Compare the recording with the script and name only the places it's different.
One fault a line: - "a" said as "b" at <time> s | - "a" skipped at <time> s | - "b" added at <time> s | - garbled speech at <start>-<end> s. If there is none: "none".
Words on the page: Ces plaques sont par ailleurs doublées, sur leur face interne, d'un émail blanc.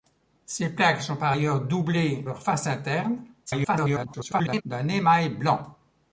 - "sur" skipped at 2.2 s
- garbled speech at 3.5-4.6 s